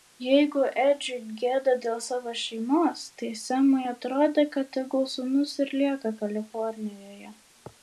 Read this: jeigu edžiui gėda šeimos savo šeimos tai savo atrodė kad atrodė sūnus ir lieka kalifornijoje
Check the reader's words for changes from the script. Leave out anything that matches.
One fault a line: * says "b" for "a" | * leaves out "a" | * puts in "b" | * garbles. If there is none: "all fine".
* says "dėl" for "šeimos"
* says "semui" for "savo"
* says "tegul" for "atrodė"